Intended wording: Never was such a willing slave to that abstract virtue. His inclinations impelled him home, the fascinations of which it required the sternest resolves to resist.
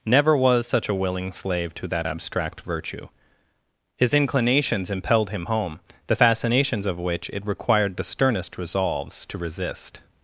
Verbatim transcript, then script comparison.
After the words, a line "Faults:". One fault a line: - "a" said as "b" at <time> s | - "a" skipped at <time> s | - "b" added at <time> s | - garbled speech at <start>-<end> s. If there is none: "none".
Never was such a willing slave to that abstract virtue. His inclinations impelled him home, the fascinations of which it required the sternest resolves to resist.
Faults:
none